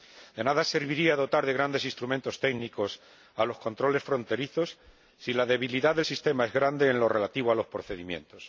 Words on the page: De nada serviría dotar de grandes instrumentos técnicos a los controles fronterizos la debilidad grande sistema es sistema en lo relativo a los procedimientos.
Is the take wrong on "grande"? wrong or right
wrong